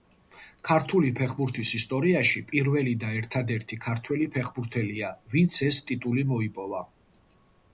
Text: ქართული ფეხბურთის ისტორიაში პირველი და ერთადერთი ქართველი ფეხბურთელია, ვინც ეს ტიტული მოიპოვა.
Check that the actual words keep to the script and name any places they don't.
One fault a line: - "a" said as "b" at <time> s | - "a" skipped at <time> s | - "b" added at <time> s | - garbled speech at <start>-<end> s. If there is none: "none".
none